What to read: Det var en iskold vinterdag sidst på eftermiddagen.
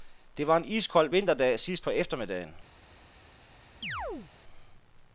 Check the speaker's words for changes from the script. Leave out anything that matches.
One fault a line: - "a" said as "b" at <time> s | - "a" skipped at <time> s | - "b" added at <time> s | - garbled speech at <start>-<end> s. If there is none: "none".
none